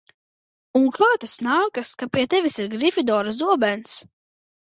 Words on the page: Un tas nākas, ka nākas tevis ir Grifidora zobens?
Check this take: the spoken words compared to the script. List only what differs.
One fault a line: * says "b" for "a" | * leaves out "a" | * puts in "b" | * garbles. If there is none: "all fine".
* puts in "kā"
* says "pie" for "nākas"